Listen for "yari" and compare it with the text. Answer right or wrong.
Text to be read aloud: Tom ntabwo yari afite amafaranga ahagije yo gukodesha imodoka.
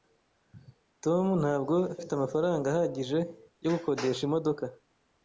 wrong